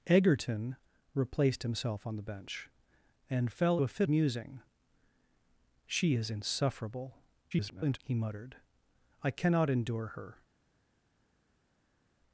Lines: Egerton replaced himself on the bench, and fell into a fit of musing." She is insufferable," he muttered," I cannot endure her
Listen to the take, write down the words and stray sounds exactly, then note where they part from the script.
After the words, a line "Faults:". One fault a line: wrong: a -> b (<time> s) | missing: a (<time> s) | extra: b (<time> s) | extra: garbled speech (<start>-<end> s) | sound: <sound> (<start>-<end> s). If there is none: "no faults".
Egerton replaced himself on the bench, and fell a fit musing." She is insufferable," [garbled] he muttered," I cannot endure her
Faults:
missing: into (3.8 s)
missing: of (4.1 s)
extra: garbled speech (7.5-8.0 s)